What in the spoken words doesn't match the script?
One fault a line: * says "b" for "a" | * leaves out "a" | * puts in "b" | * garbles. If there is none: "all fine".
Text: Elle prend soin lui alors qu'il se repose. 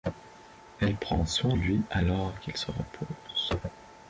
all fine